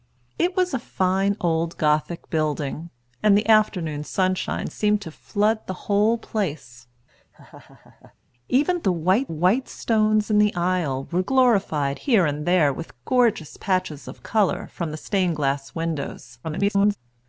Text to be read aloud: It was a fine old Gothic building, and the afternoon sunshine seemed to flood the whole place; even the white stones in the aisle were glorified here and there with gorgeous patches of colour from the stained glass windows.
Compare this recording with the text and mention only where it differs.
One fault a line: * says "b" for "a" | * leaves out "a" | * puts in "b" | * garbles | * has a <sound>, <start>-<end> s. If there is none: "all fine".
* has a laugh, 7.1-8.2 s
* puts in "white"
* garbles